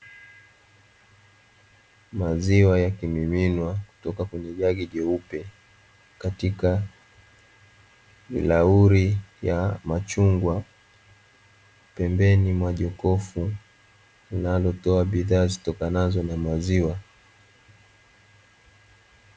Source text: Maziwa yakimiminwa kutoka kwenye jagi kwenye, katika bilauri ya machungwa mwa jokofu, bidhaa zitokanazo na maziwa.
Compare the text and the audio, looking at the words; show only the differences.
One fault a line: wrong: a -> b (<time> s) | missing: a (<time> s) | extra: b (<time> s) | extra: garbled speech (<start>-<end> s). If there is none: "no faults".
wrong: kwenye -> jeupe (4.9 s)
extra: pembeni (11.9 s)
extra: linalotoa (14.3 s)